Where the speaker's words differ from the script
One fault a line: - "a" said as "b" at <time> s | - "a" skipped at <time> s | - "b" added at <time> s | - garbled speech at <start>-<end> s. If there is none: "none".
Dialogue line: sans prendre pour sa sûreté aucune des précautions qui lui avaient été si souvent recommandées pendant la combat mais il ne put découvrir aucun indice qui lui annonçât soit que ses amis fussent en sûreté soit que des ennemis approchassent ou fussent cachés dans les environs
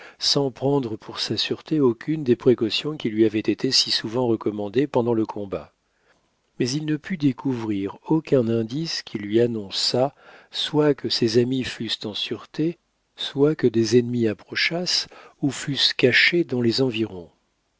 - "la" said as "le" at 5.1 s